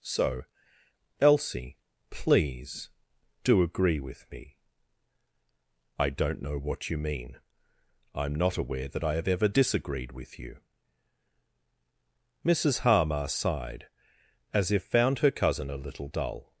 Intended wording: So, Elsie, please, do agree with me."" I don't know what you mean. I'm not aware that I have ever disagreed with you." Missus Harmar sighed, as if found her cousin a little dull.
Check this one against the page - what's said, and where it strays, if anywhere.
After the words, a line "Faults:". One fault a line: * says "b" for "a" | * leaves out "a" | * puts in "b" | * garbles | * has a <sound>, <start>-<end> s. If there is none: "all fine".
So, Elsie, please, do agree with me."" I don't know what you mean. I'm not aware that I have ever disagreed with you." Missus Harmar sighed, as if found her cousin a little dull.
Faults:
all fine